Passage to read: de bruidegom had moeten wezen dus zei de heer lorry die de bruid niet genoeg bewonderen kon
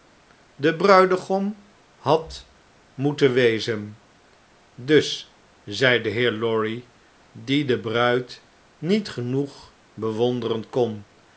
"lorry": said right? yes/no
yes